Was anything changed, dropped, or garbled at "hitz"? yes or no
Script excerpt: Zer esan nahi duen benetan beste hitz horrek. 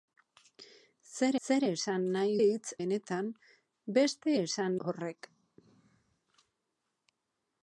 yes